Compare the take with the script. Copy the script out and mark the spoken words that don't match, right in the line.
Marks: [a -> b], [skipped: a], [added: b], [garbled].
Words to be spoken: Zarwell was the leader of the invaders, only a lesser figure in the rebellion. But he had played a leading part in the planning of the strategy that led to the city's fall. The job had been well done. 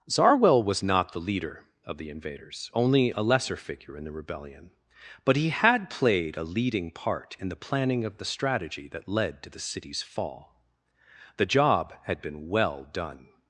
Zarwell was [added: not] the leader of the invaders, only a lesser figure in the rebellion. But he had played a leading part in the planning of the strategy that led to the city's fall. The job had been well done.